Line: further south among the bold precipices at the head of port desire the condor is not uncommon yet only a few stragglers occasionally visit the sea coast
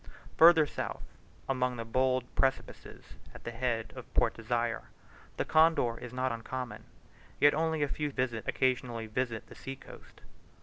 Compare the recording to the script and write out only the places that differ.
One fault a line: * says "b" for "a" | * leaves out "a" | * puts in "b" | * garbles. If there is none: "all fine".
* says "visit" for "stragglers"